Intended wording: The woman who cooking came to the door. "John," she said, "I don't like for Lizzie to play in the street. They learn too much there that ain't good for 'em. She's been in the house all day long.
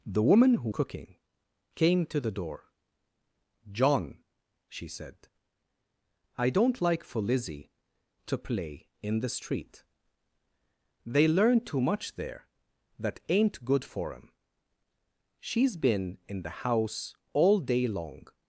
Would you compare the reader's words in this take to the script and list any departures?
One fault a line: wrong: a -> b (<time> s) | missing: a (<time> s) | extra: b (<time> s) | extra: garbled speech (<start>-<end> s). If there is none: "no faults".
no faults